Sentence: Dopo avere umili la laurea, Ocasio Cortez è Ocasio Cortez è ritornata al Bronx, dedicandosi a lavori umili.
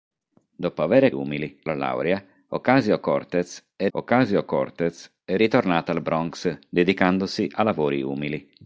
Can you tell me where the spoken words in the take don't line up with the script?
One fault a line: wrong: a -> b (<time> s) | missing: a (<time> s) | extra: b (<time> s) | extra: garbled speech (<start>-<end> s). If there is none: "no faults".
no faults